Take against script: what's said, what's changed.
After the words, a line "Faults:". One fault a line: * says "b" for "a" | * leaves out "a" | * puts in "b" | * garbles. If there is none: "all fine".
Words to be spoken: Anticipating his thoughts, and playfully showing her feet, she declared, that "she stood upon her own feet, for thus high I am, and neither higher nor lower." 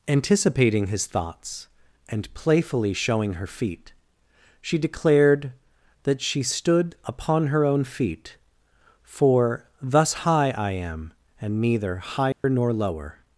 Anticipating his thoughts, and playfully showing her feet, she declared, that "she stood upon her own feet, for thus high I am, and neither higher nor lower."
Faults:
all fine